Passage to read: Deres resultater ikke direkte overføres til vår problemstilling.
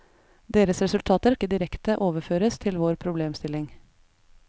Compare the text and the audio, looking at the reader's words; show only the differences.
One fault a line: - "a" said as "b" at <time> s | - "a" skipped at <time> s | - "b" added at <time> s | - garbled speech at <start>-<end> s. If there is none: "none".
none